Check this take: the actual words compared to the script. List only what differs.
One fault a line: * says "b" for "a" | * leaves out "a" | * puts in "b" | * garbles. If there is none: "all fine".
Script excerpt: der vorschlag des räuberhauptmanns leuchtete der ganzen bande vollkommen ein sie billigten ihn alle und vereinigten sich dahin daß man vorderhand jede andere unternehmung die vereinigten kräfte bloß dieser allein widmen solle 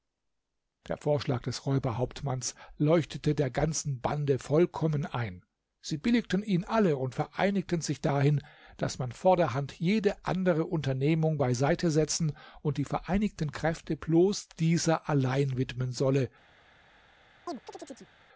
* puts in "beiseite setzen und"